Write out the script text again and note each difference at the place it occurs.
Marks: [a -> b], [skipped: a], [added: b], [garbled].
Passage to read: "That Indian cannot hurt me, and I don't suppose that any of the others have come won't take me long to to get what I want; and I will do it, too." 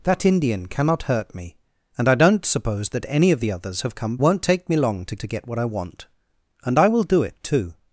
"That Indian cannot hurt me, and I don't suppose that any of the others have come won't take me long to to get what I want; and I will do it, too."